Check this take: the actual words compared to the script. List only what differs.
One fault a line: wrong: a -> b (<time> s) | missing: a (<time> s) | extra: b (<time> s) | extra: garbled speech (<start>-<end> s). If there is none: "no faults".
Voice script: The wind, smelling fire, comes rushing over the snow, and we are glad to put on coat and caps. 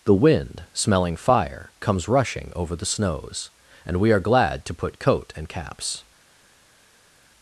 wrong: snow -> snows (2.9 s)
missing: on (5.0 s)